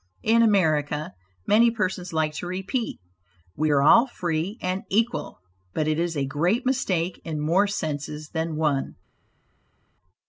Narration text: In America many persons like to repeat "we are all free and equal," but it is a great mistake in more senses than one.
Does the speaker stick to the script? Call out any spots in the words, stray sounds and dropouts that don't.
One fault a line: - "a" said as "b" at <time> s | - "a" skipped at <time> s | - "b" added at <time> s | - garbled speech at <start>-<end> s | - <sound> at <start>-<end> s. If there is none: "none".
none